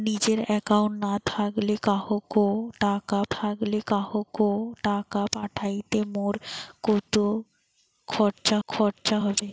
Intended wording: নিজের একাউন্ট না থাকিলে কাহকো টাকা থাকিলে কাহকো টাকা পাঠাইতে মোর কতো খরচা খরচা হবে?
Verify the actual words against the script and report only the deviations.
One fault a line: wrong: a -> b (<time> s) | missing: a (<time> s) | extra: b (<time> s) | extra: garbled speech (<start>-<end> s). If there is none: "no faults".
no faults